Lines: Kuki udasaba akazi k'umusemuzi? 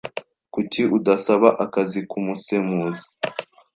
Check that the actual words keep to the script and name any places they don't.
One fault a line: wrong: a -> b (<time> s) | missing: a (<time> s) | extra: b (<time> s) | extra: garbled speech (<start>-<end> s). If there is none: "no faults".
no faults